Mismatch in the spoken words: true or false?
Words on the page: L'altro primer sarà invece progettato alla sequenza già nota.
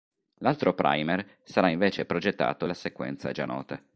false